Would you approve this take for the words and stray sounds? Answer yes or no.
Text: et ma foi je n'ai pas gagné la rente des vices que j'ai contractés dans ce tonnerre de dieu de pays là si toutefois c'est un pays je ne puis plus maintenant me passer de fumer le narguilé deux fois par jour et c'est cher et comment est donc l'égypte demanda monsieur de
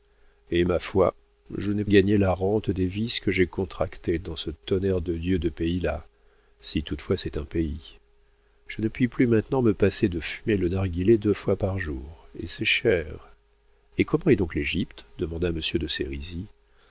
no